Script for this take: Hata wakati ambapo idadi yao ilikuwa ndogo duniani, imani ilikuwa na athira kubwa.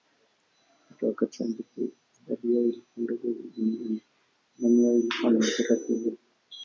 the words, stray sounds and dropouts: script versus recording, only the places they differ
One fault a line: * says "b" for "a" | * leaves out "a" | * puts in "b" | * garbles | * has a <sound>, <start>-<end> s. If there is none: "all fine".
* puts in "yao"